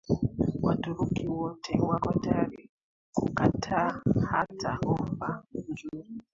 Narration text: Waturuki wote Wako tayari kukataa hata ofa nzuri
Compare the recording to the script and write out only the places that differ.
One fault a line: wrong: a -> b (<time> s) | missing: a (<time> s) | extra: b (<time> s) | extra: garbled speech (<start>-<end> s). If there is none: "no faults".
no faults